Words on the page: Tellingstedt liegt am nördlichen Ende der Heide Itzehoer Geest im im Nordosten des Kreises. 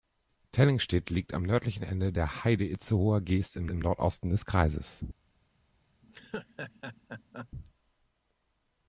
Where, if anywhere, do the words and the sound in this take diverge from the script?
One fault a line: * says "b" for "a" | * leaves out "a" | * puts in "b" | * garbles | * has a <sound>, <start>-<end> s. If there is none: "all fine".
* has a laugh, 6.0-7.5 s